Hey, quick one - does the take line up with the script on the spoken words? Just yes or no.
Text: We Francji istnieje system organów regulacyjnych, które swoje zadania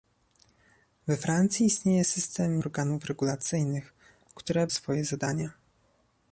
yes